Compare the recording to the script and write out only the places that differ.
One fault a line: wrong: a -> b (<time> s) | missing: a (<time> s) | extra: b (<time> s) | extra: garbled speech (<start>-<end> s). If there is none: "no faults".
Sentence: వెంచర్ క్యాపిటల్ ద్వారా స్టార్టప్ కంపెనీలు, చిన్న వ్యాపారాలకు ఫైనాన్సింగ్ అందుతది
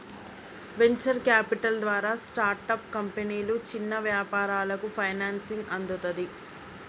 no faults